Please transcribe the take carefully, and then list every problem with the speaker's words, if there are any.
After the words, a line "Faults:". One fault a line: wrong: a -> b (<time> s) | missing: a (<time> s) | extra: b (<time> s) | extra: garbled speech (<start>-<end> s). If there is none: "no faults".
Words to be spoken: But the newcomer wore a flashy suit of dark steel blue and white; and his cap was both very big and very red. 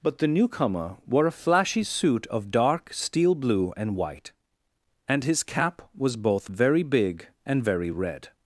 But the newcomer wore a flashy suit of dark steel blue and white; and his cap was both very big and very red.
Faults:
no faults